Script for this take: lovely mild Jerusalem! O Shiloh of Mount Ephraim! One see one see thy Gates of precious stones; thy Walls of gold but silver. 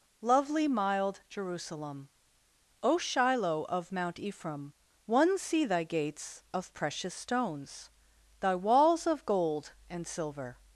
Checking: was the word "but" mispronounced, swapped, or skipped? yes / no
yes